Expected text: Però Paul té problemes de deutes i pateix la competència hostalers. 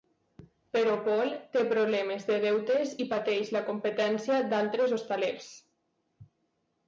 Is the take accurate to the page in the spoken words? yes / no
no